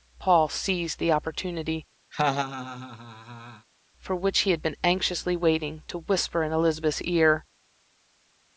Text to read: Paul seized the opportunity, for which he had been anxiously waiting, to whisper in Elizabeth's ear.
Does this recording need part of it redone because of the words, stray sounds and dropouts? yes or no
yes